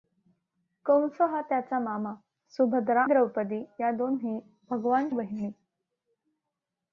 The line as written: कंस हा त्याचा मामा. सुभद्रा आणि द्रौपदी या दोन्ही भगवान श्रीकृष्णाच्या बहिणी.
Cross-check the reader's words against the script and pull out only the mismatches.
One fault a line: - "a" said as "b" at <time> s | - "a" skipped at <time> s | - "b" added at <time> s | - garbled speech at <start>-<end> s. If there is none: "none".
- "आणि" skipped at 3.0 s
- "श्रीकृष्णाच्या" skipped at 5.1 s